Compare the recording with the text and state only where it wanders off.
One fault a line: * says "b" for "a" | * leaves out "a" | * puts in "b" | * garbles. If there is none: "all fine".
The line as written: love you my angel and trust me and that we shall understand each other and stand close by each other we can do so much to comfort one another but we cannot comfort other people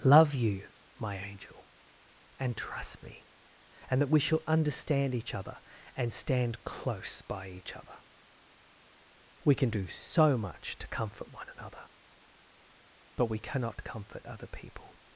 all fine